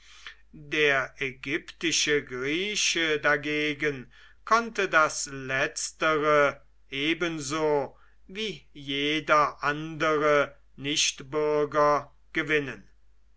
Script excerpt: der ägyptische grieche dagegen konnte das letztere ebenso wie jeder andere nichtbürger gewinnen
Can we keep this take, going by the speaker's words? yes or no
yes